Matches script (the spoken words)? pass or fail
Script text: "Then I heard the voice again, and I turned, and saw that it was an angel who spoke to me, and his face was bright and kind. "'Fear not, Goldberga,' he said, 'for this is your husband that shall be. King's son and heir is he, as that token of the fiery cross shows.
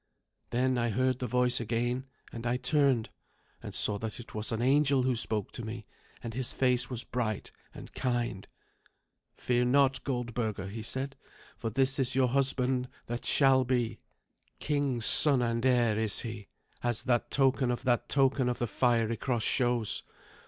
fail